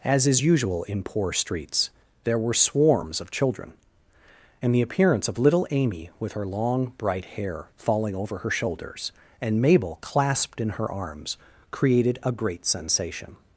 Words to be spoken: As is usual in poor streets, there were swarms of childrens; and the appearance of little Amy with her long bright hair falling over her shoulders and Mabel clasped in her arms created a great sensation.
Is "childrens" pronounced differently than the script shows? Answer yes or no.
yes